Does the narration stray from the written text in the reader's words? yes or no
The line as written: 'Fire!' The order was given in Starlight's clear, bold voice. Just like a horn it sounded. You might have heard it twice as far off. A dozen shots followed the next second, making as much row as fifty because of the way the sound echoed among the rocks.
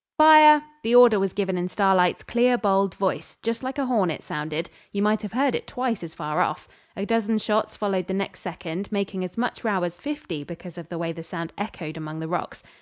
no